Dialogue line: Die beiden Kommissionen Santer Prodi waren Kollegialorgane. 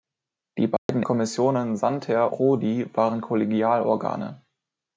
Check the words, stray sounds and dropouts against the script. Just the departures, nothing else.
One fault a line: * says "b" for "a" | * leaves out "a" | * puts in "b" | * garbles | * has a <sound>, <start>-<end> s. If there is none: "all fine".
* has a dropout, 0.8-0.9 s